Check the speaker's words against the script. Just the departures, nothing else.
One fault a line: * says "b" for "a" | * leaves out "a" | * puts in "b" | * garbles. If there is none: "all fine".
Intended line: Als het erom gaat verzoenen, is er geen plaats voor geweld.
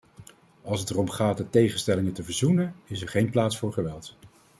* puts in "de tegenstellingen te"